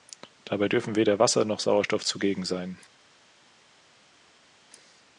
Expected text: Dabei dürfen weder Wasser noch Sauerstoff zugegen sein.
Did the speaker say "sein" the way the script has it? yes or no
yes